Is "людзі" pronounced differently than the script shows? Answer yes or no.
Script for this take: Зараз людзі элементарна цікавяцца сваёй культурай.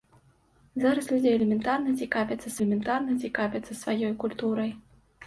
no